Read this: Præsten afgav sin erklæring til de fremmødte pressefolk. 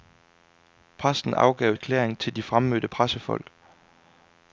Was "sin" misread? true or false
true